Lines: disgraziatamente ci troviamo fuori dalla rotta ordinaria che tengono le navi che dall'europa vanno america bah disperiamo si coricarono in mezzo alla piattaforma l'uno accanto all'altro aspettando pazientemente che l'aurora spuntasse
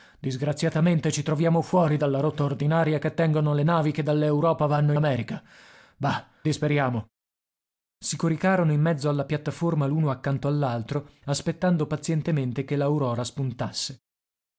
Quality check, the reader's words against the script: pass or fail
pass